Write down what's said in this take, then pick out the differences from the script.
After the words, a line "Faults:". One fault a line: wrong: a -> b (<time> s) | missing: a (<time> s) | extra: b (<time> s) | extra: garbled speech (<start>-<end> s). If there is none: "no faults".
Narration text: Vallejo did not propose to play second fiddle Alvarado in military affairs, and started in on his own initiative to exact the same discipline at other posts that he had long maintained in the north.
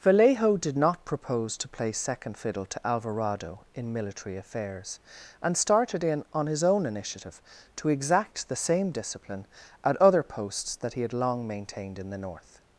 Vallejo did not propose to play second fiddle to Alvarado in military affairs, and started in on his own initiative to exact the same discipline at other posts that he had long maintained in the north.
Faults:
extra: to (2.6 s)